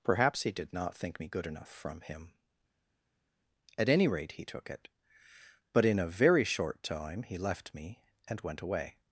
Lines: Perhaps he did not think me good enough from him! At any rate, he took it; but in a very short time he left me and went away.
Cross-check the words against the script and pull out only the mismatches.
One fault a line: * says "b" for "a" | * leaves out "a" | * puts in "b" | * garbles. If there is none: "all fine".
all fine